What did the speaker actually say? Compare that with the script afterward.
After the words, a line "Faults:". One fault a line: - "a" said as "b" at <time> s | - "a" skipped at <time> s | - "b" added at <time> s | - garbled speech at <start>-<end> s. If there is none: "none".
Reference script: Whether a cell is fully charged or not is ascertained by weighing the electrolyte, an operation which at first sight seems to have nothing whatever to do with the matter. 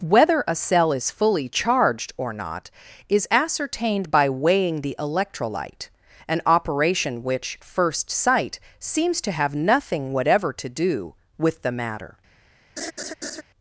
Whether a cell is fully charged or not is ascertained by weighing the electrolyte, an operation which first sight seems to have nothing whatever to do with the matter.
Faults:
- "at" skipped at 7.6 s